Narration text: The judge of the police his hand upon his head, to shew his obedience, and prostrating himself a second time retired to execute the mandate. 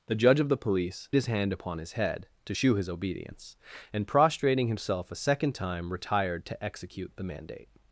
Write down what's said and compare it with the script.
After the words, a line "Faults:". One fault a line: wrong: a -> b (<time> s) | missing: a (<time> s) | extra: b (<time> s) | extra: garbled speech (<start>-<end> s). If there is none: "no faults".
The judge of the police his hand upon his head, to shew his obedience, and prostrating himself a second time retired to execute the mandate.
Faults:
no faults